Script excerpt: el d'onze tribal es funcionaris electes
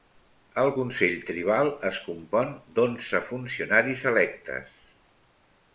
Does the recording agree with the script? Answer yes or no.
no